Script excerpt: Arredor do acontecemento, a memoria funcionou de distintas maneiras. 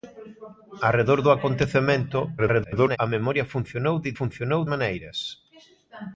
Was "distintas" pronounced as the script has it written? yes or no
no